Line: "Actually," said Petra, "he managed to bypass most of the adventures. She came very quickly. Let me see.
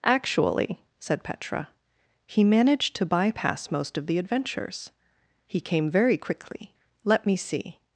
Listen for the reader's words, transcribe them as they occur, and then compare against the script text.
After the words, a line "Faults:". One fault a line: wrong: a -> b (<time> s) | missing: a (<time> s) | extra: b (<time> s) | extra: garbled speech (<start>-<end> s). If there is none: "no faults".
"Actually," said Petra, "he managed to bypass most of the adventures. He came very quickly. Let me see.
Faults:
wrong: She -> He (5.5 s)